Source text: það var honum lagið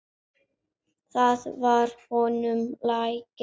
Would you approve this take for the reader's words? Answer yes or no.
yes